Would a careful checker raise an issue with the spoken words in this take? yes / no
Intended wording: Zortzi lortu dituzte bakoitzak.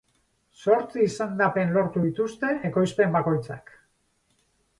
yes